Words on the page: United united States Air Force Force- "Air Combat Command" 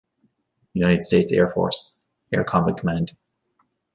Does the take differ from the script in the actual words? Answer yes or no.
yes